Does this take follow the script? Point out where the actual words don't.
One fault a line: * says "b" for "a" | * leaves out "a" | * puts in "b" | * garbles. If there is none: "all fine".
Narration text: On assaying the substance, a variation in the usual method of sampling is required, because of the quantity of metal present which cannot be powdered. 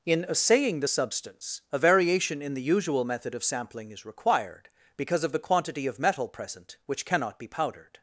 * says "In" for "On"